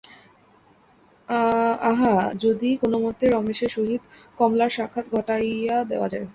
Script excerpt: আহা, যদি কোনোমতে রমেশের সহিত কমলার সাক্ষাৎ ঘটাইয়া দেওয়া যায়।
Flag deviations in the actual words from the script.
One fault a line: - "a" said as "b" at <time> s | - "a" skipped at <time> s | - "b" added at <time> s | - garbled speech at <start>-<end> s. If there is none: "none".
none